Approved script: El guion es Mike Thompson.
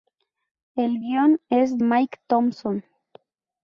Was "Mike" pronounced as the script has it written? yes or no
yes